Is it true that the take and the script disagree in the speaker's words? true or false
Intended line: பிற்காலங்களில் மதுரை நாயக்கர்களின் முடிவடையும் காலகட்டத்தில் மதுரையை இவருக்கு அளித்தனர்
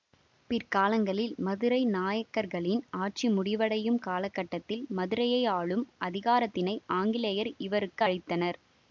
true